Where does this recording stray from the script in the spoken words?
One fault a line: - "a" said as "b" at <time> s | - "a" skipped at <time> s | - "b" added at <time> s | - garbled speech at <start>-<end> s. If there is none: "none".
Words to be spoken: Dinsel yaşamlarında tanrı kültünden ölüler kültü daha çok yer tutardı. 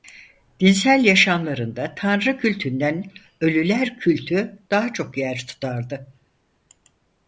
none